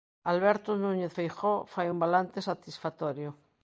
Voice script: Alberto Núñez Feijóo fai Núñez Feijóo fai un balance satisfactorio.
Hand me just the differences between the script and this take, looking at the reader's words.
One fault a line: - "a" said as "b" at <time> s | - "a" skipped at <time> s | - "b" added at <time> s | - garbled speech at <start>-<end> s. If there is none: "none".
- "Núñez Feijóo fai" skipped at 1.9 s